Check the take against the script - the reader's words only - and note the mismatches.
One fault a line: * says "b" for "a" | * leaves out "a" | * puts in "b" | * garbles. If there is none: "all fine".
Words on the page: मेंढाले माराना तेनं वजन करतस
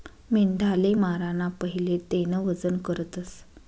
* puts in "पहिले"